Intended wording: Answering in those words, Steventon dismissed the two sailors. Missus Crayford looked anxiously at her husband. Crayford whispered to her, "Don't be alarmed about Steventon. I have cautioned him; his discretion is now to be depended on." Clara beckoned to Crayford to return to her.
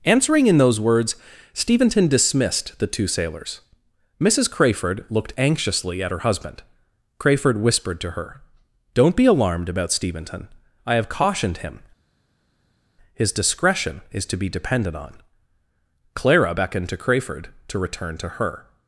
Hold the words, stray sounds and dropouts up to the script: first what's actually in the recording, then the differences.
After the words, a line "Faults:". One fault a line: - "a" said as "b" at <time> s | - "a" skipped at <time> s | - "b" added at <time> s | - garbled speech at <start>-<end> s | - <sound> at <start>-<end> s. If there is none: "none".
Answering in those words, Steventon dismissed the two sailors. Missus Crayford looked anxiously at her husband. Crayford whispered to her, "Don't be alarmed about Steventon. I have cautioned him; his discretion is to be depended on." Clara beckoned to Crayford to return to her.
Faults:
- "now" skipped at 14.3 s